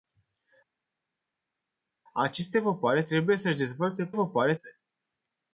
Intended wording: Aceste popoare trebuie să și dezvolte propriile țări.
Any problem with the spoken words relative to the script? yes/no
yes